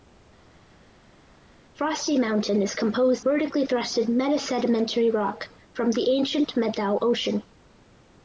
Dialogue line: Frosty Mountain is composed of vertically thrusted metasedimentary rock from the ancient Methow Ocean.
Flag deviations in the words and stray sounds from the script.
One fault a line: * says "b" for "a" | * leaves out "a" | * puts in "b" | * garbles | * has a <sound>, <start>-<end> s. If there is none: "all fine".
* leaves out "of"